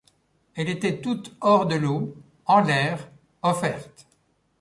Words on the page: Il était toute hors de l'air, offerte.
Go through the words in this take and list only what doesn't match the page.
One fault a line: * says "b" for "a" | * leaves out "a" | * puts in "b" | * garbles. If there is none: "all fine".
* says "Elle" for "Il"
* puts in "l'eau en"